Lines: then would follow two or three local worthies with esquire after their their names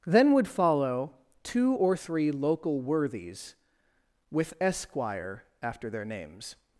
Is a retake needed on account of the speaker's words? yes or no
yes